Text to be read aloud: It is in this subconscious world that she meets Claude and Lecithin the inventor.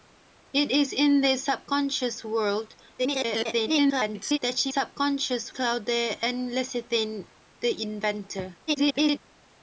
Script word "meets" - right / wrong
wrong